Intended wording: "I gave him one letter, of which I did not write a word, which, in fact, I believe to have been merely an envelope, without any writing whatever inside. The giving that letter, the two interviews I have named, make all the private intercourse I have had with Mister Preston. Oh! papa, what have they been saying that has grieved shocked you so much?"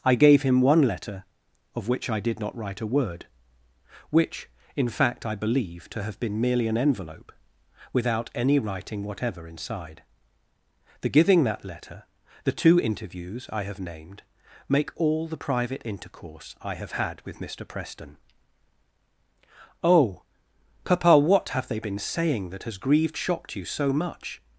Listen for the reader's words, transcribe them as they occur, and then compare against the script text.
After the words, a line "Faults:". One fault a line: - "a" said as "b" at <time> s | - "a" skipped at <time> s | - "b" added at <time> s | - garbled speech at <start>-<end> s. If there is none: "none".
"I gave him one letter, of which I did not write a word, which, in fact, I believe to have been merely an envelope, without any writing whatever inside. The giving that letter, the two interviews I have named, make all the private intercourse I have had with Mister Preston. Oh! papa, what have they been saying that has grieved shocked you so much?"
Faults:
none